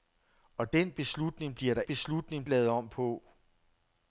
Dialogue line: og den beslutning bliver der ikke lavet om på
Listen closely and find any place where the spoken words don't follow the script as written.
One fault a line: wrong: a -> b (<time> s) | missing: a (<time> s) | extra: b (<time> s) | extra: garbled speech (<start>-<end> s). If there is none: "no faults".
wrong: ikke -> beslutning (1.8 s)